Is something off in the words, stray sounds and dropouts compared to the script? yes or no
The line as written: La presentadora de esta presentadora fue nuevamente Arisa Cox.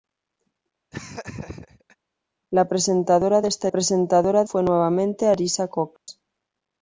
yes